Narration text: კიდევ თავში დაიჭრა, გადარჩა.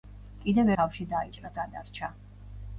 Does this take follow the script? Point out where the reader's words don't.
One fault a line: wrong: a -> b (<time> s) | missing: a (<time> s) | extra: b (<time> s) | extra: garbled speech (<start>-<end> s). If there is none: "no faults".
no faults